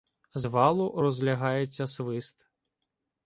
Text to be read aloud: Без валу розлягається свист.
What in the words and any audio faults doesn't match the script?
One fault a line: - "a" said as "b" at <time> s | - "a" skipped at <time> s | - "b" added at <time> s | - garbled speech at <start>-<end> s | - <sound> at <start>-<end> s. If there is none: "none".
- "Без" said as "З" at 0.3 s